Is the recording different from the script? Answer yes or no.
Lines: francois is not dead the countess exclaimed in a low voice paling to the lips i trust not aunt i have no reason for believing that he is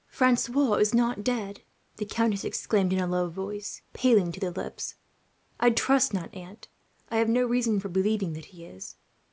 no